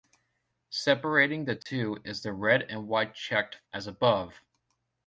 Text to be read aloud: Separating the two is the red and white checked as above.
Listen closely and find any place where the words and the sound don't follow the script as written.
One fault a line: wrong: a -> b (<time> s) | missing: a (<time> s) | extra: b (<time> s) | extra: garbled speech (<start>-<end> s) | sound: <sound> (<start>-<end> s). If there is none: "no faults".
sound: dropout (1.6-1.7 s)